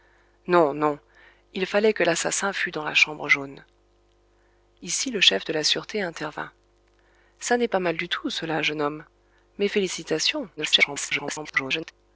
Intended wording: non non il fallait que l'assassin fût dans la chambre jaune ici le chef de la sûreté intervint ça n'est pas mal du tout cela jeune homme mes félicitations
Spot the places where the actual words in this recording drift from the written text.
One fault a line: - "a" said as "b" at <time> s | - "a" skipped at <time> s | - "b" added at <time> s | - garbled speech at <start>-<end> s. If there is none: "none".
- garbled speech at 10.6-11.9 s